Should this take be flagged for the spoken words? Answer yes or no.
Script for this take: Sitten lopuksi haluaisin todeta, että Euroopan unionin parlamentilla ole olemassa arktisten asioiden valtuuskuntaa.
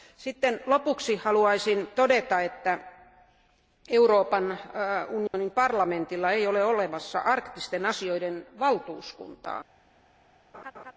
yes